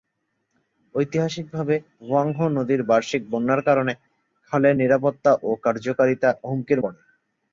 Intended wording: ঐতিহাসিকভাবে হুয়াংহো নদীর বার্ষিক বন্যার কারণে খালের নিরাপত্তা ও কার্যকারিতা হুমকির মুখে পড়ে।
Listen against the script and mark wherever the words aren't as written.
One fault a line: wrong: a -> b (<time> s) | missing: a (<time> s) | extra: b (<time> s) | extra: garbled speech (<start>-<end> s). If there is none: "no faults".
missing: মুখে (6.8 s)